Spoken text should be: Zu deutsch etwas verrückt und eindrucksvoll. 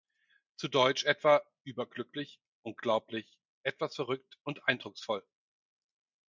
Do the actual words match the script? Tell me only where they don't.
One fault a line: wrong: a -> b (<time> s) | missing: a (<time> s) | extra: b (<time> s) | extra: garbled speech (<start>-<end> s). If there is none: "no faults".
extra: etwa überglücklich unglaublich (1.0 s)